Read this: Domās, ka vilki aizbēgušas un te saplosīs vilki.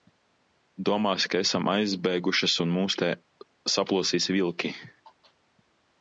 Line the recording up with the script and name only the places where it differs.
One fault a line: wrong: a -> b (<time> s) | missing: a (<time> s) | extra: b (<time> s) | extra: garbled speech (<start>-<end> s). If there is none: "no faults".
wrong: vilki -> esam (1.4 s)
extra: mūs (2.7 s)